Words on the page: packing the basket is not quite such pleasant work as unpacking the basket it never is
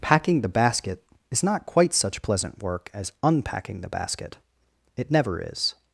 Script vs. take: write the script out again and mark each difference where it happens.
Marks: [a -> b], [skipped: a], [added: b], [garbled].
packing the basket is not quite such pleasant work as unpacking the basket it never is